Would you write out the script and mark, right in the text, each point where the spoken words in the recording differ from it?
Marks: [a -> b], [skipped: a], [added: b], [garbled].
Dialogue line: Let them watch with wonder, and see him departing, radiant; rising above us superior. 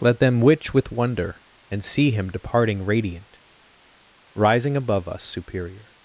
Let them [watch -> witch] with wonder, and see him departing, radiant; rising above us superior.